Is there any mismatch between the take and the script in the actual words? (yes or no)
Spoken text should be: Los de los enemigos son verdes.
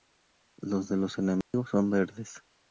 no